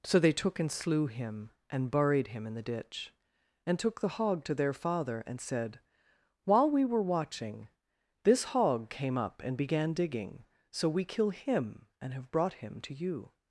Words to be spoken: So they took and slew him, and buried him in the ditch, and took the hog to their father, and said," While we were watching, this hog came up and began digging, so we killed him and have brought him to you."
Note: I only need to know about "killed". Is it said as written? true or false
false